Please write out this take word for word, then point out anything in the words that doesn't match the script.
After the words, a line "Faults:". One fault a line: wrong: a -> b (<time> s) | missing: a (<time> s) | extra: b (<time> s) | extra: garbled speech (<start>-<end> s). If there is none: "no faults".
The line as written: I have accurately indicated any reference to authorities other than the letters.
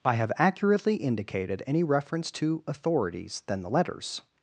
I have accurately indicated any reference to authorities than the letters.
Faults:
missing: other (3.4 s)